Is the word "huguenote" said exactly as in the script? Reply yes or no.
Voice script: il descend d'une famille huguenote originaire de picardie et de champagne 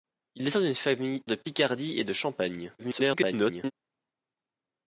no